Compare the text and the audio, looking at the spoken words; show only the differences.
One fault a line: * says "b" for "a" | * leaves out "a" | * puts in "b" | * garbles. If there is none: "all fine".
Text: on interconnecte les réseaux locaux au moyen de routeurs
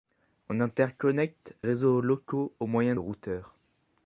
* leaves out "les"
* leaves out "de"